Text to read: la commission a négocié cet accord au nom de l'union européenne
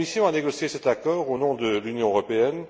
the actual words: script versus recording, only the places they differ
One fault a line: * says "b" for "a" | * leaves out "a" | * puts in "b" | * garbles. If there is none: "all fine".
all fine